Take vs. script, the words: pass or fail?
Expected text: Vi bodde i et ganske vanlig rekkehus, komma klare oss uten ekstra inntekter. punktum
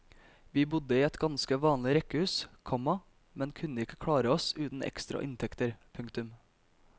fail